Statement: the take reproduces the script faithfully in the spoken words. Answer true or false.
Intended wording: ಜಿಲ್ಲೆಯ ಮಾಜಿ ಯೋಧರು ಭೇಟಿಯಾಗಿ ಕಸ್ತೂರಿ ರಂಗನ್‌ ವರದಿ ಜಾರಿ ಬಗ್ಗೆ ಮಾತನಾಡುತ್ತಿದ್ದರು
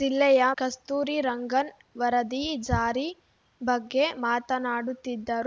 false